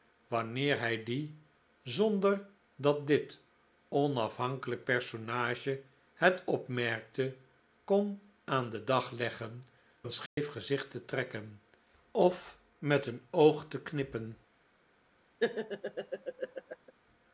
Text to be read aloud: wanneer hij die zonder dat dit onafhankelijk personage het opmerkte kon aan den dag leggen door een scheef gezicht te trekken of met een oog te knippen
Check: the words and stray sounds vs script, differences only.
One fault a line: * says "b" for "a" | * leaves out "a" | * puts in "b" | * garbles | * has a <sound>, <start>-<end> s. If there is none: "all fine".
* leaves out "door"
* has a dropout, 10.3-10.4 s
* has a laugh, 15.4-16.9 s